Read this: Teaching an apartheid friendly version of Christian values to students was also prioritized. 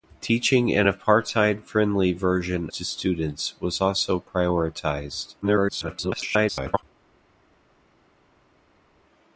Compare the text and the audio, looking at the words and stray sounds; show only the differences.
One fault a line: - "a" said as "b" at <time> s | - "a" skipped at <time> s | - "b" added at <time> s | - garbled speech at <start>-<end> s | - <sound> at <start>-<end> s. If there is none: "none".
- "of Christian values" skipped at 2.7 s
- garbled speech at 5.4-6.8 s